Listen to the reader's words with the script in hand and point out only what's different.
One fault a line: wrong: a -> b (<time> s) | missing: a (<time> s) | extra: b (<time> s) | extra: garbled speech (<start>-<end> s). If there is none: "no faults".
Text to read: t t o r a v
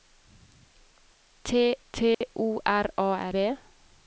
no faults